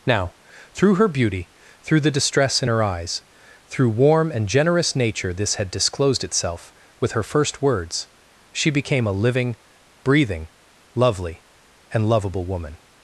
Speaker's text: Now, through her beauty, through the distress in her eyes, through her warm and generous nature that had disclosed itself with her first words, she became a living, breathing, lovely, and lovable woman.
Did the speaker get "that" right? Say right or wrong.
wrong